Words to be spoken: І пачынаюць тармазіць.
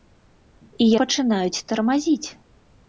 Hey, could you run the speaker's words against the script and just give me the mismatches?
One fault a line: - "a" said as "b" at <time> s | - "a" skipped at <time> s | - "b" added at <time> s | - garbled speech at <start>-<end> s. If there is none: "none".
none